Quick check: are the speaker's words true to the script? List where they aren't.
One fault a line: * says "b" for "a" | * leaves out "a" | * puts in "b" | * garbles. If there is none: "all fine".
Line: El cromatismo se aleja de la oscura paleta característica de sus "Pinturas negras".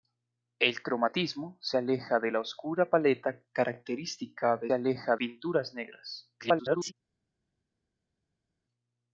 * says "aleja" for "sus"
* garbles